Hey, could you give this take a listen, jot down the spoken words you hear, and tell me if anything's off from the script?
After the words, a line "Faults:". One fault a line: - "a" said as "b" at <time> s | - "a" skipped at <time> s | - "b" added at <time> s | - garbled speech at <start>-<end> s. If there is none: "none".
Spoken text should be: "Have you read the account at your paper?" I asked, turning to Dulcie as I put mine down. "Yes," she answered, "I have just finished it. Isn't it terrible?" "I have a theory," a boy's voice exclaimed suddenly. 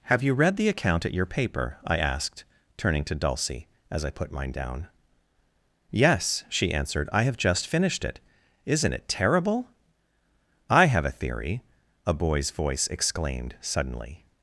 "Have you read the account at your paper?" I asked, turning to Dulcie as I put mine down. "Yes," she answered, "I have just finished it. Isn't it terrible?" "I have a theory," a boy's voice exclaimed suddenly.
Faults:
none